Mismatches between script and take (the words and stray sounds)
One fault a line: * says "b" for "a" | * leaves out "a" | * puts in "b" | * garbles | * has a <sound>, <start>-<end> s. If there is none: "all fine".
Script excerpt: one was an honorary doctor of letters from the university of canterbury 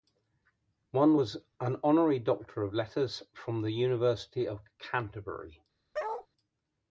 * has a bark, 5.9-6.3 s